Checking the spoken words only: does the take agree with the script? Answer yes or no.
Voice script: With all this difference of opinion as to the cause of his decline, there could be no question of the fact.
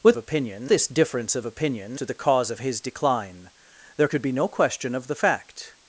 no